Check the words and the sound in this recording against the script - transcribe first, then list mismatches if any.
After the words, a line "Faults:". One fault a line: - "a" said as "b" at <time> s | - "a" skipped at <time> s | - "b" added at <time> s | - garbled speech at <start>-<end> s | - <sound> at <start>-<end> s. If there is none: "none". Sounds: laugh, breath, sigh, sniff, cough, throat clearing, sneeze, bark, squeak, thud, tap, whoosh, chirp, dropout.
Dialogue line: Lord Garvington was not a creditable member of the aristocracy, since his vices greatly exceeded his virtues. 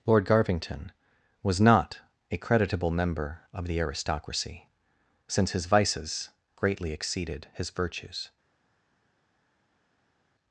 Lord Garvington was not a creditable member of the aristocracy, since his vices greatly exceeded his virtues.
Faults:
none